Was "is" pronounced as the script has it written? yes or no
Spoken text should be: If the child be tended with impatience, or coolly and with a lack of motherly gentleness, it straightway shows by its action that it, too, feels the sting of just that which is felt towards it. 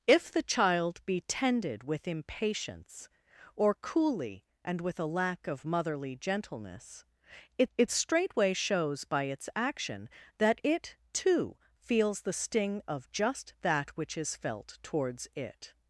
yes